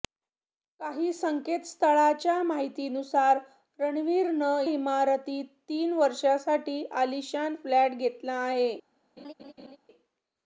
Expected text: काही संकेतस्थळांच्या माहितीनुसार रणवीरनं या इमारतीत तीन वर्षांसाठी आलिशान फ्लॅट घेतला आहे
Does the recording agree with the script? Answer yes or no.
no